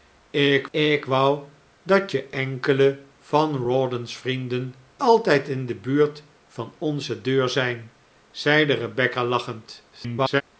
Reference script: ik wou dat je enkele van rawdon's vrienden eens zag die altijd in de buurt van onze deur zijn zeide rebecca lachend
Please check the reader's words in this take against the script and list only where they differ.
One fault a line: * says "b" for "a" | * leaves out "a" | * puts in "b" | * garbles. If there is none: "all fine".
* puts in "ik"
* leaves out "eens zag die"
* garbles